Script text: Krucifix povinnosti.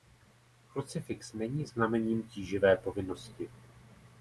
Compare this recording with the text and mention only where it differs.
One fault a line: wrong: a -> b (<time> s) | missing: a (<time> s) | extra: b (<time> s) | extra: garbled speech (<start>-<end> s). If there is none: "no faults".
extra: není znamením tíživé (1.3 s)